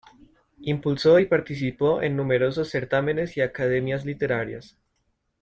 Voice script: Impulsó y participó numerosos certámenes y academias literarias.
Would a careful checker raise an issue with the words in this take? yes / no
yes